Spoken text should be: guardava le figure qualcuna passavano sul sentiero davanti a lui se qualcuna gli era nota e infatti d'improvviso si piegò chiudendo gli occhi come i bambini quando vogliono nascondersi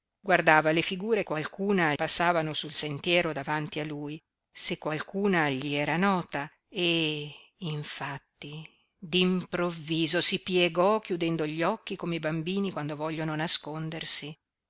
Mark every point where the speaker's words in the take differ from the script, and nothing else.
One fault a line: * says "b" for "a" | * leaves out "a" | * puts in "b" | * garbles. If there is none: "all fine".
all fine